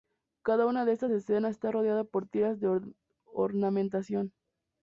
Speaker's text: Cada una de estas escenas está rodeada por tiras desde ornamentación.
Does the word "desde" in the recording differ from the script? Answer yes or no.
yes